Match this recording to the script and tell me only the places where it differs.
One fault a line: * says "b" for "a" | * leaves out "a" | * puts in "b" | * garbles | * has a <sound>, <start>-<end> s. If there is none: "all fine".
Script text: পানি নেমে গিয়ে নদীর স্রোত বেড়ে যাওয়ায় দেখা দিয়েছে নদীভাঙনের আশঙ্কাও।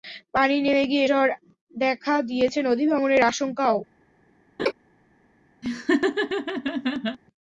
* leaves out "নদীর স্রোত বেড়ে"
* has a laugh, 4.6-4.7 s
* has a laugh, 5.6-7.2 s